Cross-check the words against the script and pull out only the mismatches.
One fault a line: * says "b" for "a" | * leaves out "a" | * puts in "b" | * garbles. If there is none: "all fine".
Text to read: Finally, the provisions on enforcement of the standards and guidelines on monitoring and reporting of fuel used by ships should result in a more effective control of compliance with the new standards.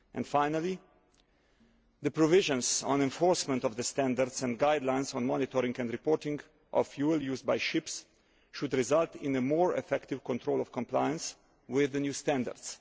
all fine